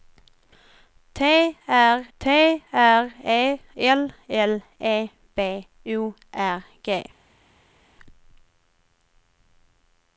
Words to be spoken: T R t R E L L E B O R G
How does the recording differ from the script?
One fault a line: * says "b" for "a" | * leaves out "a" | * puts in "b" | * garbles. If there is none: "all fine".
all fine